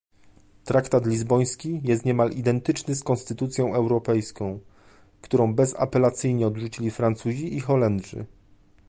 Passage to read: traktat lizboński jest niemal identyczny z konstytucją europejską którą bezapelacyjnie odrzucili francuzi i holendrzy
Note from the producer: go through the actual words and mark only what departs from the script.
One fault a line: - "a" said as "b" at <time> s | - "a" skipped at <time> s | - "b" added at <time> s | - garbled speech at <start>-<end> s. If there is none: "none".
none